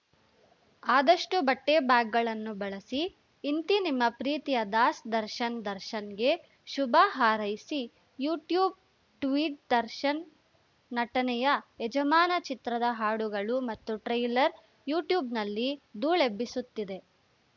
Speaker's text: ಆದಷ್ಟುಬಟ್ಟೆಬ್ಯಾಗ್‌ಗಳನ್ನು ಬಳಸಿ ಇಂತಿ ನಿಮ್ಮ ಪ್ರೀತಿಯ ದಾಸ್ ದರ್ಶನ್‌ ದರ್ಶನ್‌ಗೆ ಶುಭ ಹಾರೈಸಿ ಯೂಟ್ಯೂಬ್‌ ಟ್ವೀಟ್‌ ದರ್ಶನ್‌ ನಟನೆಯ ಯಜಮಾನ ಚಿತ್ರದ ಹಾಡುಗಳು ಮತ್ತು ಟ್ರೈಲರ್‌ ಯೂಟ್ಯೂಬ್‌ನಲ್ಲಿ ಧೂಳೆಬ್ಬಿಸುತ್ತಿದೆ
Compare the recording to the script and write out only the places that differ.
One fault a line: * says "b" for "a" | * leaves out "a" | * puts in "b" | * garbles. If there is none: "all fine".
all fine